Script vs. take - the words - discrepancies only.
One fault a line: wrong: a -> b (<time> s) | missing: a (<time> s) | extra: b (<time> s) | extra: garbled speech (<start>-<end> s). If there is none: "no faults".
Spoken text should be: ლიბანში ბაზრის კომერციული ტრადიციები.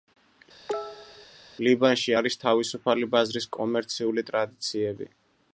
extra: არის თავისუფალი (2.2 s)